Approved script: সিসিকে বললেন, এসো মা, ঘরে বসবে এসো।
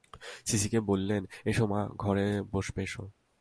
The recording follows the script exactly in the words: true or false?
true